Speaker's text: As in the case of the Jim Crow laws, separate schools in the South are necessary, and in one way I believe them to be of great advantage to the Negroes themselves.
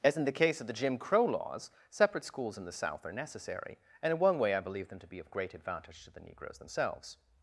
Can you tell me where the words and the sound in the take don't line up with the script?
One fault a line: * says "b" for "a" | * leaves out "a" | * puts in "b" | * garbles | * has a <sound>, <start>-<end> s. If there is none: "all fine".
all fine